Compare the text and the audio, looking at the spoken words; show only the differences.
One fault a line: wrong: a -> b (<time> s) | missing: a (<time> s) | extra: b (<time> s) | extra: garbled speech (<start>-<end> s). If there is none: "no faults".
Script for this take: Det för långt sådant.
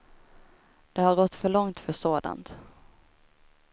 extra: har gått (1.0 s)
extra: för (1.8 s)